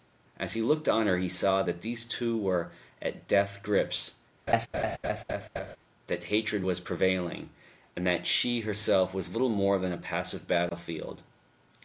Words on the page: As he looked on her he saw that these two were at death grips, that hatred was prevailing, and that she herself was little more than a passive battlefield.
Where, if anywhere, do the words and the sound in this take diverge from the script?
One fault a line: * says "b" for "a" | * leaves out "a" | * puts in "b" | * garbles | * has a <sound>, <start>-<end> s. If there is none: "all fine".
* has a laugh, 4.5-5.8 s